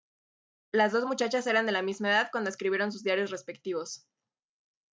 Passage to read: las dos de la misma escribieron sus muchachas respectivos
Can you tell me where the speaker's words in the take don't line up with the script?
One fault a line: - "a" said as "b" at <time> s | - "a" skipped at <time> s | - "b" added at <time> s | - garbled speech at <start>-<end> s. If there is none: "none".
- "muchachas eran" added at 1.0 s
- "edad cuando" added at 2.1 s
- "muchachas" said as "diarios" at 3.0 s